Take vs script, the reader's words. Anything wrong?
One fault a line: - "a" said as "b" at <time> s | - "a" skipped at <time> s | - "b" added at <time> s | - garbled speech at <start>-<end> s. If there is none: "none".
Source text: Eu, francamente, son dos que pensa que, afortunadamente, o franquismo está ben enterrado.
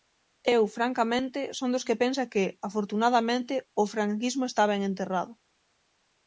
none